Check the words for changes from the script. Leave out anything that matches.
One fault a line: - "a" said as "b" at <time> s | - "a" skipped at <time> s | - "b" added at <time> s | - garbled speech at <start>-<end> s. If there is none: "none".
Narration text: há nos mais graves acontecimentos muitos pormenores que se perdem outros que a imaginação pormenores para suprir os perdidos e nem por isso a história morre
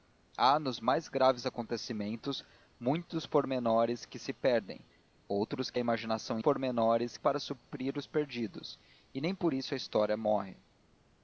none